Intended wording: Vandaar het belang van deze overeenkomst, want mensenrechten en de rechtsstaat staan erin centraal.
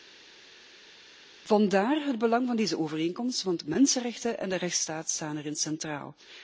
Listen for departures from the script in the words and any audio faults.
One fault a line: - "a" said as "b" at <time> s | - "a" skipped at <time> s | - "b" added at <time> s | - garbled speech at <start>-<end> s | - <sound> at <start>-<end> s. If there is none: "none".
none